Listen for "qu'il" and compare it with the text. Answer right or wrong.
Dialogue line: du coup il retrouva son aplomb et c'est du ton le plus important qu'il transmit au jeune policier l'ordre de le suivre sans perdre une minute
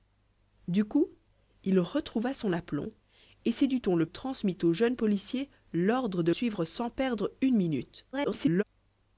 wrong